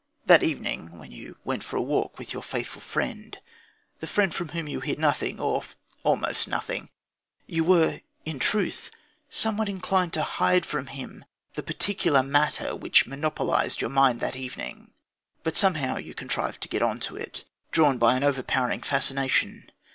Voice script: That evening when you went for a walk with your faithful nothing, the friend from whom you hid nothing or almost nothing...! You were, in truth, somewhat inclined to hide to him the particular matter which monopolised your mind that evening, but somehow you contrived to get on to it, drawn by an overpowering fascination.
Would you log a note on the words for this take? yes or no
yes